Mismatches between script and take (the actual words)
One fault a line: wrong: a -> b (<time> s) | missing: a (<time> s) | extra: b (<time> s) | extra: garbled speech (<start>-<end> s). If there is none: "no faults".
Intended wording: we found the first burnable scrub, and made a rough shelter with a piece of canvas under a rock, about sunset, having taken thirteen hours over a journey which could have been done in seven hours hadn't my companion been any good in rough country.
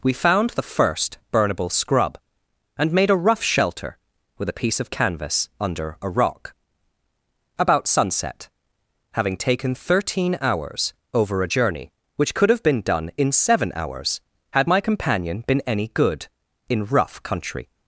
wrong: hadn't -> had (14.5 s)